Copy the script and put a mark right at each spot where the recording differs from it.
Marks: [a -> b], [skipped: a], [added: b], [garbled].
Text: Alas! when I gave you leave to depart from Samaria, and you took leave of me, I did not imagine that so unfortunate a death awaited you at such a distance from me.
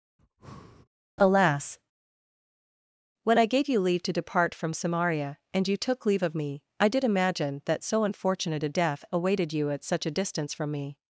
Alas! when I gave you leave to depart from Samaria, and you took leave of me, I did [skipped: not] imagine that so unfortunate a death awaited you at such a distance from me.